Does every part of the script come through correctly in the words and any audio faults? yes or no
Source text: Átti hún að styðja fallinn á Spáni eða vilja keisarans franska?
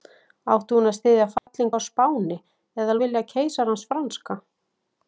no